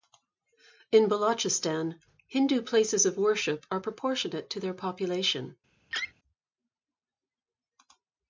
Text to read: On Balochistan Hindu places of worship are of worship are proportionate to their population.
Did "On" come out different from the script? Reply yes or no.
yes